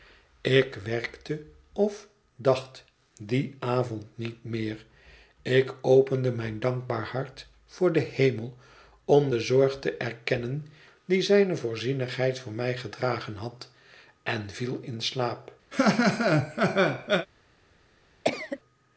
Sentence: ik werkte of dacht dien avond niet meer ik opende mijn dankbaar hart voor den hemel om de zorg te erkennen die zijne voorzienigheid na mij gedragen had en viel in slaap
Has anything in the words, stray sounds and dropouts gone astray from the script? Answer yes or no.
yes